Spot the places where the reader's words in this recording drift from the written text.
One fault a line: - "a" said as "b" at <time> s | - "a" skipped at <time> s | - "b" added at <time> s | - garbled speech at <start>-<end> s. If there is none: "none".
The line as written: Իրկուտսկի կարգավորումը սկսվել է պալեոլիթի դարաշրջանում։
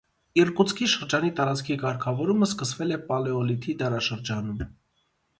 - "շրջանի տարածքի" added at 0.9 s